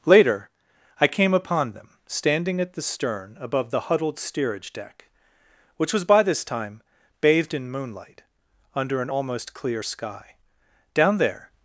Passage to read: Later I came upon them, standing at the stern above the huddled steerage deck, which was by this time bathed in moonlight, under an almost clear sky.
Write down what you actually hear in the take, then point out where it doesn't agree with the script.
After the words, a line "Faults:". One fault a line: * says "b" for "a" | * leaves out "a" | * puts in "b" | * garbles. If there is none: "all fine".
Later I came upon them, standing at the stern above the huddled steerage deck, which was by this time bathed in moonlight, under an almost clear sky. Down there
Faults:
* puts in "Down there"